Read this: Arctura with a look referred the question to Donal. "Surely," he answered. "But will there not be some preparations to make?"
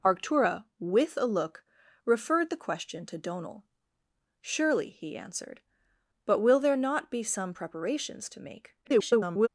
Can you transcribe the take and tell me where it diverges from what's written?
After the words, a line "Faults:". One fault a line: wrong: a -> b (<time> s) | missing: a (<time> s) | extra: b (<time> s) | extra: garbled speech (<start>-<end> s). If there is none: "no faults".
Arctura with a look referred the question to Donal. "Surely," he answered. "But will there not be some preparations to make?" [garbled]
Faults:
extra: garbled speech (8.8-9.5 s)